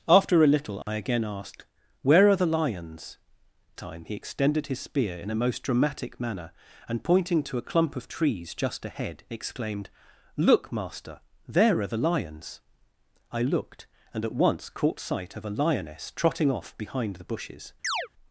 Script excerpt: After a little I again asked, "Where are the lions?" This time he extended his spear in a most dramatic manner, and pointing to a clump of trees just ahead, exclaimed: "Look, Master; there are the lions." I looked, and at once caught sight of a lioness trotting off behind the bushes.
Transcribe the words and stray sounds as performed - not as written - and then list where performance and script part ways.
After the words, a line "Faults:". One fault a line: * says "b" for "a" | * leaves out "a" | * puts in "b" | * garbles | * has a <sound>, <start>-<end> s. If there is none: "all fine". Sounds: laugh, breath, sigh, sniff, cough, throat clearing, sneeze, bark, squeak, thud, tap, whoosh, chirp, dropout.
After a little I again asked, "Where are the lions?" Time he extended his spear in a most dramatic manner, and pointing to a clump of trees just ahead, exclaimed: "Look, Master; there are the lions." I looked, and at once caught sight of a lioness trotting off behind the bushes.
Faults:
* has a dropout, 0.8-0.9 s
* leaves out "This"
* has a chirp, 17.8-18.1 s